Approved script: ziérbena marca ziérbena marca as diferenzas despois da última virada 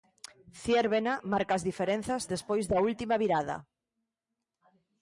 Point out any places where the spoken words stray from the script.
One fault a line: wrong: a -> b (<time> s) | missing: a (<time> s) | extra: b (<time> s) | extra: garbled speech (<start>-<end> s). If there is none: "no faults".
missing: ziérbena marca (1.5 s)